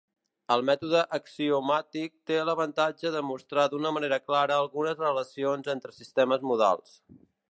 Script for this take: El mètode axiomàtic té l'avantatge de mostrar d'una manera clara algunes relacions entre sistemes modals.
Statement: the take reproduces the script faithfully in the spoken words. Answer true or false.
true